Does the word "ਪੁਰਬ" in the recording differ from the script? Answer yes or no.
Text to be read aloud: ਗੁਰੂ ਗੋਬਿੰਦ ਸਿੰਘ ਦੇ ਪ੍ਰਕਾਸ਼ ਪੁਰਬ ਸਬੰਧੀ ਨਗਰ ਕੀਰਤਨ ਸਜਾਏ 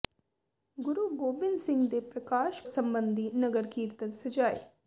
yes